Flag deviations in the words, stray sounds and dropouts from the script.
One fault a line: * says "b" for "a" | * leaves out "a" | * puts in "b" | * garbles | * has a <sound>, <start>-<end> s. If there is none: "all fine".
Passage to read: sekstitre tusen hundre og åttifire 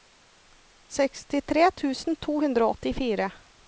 * puts in "to"